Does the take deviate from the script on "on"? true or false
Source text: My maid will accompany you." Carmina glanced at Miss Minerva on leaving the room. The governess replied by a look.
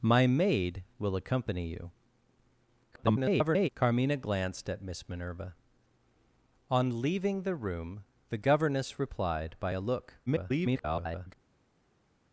false